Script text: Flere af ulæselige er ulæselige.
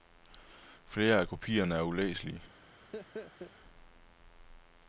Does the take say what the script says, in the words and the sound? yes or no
no